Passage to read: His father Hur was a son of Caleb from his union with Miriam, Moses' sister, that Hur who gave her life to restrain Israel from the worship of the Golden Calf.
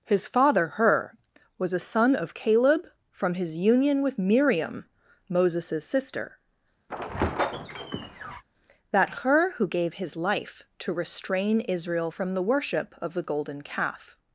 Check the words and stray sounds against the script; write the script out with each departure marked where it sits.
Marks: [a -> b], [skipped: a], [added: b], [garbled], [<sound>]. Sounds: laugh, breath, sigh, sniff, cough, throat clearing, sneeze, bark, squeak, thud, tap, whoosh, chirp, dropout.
His father Hur was a son of Caleb from his union with Miriam, Moses' sister, [squeak] that Hur who gave [her -> his] life to restrain Israel from the worship of the Golden Calf.